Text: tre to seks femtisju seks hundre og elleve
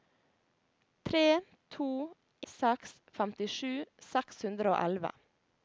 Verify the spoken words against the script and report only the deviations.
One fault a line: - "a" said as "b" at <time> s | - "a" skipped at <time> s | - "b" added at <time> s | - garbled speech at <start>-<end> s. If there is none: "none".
none